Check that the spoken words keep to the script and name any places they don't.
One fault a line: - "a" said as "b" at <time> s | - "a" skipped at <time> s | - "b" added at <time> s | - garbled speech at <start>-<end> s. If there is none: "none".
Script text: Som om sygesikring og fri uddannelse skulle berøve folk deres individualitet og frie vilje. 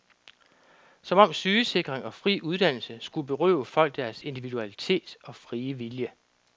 none